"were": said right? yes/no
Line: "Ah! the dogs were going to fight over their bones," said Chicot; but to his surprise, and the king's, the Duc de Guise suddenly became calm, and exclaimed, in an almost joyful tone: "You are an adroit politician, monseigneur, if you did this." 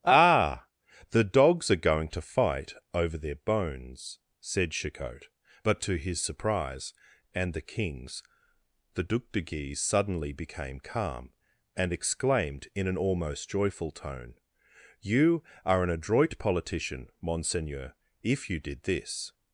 no